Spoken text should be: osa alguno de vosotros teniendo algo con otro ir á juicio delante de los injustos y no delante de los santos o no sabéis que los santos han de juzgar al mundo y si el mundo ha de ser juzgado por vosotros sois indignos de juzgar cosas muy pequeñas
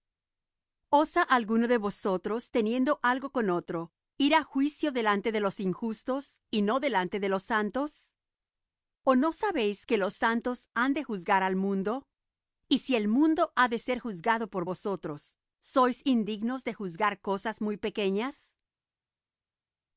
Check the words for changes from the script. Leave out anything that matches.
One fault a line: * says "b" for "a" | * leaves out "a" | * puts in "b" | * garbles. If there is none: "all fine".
all fine